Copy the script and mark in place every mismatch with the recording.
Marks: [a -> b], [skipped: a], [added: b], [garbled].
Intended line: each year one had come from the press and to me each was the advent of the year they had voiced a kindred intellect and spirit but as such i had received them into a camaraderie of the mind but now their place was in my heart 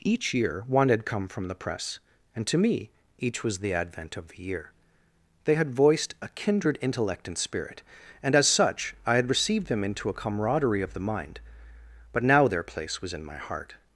each year one had come from the press and to me each was the advent of the year they had voiced a kindred intellect and spirit [but -> and] as such i had received them into a camaraderie of the mind but now their place was in my heart